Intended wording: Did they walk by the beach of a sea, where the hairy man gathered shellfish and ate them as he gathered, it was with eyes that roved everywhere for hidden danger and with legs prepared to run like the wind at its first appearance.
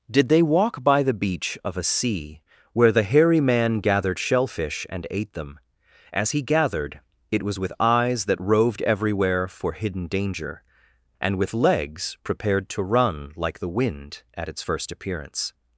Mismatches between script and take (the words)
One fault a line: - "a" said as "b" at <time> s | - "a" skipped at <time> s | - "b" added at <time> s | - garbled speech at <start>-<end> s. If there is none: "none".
none